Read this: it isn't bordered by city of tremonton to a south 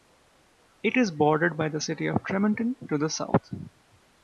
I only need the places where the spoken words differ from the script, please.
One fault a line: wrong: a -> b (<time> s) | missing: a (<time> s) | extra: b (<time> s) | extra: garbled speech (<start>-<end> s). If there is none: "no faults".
wrong: isn't -> is (1.0 s)
extra: the (1.7 s)
wrong: a -> the (3.0 s)